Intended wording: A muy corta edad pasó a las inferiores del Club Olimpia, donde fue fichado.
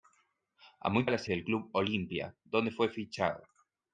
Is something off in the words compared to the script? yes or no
yes